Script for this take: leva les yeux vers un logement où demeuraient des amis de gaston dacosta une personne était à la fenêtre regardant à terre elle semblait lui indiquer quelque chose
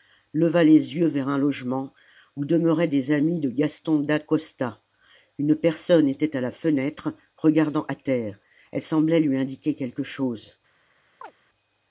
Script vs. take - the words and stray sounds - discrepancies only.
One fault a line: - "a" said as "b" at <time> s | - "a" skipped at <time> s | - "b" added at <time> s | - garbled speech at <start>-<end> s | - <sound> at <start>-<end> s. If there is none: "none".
- chirp at 11.2-11.3 s